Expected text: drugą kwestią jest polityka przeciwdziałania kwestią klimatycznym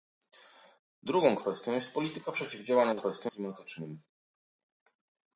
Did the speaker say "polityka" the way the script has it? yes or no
yes